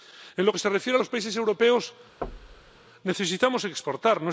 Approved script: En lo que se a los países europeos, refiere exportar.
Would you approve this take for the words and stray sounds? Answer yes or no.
no